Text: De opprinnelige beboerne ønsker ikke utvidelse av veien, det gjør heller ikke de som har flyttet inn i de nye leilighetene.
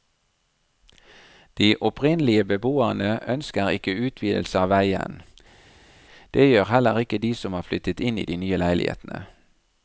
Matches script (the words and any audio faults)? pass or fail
pass